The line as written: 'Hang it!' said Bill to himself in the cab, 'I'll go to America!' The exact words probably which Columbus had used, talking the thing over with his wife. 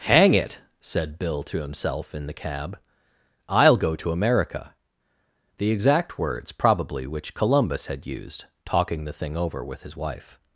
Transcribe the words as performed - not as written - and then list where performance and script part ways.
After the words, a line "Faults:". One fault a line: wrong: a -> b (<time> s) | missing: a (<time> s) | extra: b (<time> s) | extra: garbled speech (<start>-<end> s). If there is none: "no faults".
'Hang it!' said Bill to himself in the cab, 'I'll go to America!' The exact words probably which Columbus had used, talking the thing over with his wife.
Faults:
no faults